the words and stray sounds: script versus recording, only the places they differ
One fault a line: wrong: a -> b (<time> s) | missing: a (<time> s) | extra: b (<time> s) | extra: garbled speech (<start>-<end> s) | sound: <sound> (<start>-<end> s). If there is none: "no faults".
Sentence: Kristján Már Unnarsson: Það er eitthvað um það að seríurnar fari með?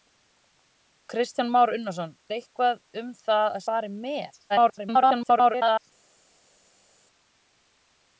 missing: Það (2.1 s)
missing: seríurnar (3.7 s)
extra: garbled speech (4.5-5.8 s)